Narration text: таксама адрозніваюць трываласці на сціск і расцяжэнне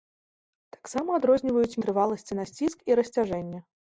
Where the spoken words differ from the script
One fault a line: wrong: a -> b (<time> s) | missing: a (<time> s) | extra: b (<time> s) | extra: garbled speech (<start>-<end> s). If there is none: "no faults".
no faults